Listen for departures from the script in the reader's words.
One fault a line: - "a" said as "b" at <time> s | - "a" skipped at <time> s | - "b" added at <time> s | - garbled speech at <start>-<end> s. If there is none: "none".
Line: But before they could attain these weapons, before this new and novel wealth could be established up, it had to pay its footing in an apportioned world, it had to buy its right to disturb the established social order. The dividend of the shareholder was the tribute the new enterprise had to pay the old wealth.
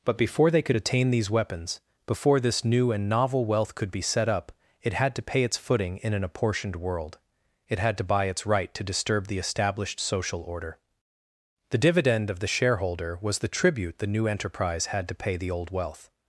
- "established" said as "set" at 4.0 s